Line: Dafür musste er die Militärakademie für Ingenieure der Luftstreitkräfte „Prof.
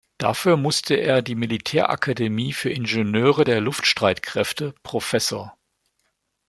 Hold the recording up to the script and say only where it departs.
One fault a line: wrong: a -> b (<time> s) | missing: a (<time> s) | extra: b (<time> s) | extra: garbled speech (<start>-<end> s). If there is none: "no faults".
no faults